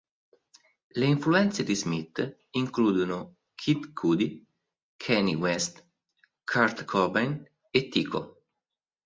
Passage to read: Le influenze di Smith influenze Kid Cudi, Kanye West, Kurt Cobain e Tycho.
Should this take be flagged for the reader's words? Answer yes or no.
yes